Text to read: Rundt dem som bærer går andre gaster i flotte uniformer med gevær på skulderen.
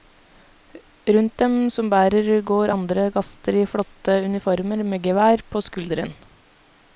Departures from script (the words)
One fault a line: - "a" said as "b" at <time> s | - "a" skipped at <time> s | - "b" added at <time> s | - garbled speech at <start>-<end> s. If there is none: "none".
none